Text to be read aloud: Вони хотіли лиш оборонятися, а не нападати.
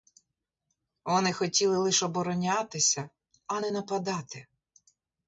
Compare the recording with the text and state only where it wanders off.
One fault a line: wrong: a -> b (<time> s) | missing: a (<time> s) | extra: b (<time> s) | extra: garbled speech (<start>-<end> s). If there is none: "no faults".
no faults